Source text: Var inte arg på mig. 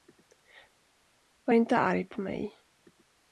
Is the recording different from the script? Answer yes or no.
no